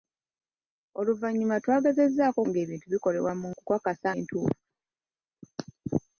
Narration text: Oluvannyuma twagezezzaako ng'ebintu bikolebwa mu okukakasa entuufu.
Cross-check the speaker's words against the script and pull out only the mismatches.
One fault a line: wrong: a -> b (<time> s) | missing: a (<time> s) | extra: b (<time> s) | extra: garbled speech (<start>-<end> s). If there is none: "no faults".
no faults